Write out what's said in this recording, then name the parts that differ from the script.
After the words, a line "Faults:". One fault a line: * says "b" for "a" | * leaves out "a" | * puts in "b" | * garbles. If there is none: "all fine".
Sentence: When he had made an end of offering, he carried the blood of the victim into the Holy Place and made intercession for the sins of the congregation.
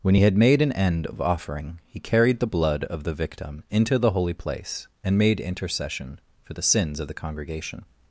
When he had made an end of offering, he carried the blood of the victim into the Holy Place and made intercession for the sins of the congregation.
Faults:
all fine